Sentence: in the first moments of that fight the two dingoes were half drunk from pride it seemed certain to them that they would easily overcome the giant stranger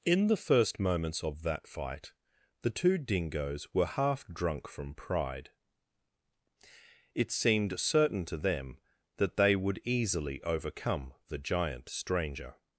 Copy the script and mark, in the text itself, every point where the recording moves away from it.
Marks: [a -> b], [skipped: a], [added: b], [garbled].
in the first moments of that fight the two dingoes were half drunk from pride it seemed certain to them that they would easily overcome the giant stranger